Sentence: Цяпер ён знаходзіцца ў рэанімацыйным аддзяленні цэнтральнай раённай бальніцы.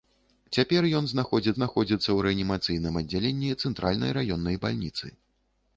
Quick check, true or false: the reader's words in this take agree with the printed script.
false